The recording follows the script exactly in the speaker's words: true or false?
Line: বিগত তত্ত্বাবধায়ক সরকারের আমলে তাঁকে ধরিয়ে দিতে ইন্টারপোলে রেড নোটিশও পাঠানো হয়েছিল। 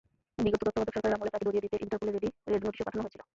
true